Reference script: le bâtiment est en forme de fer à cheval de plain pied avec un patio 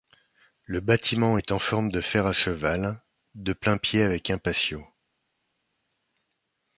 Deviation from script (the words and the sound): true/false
false